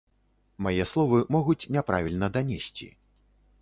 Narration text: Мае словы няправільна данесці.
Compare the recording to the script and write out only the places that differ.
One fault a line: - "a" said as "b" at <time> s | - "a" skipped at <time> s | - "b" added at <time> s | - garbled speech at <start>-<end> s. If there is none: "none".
- "могуць" added at 1.4 s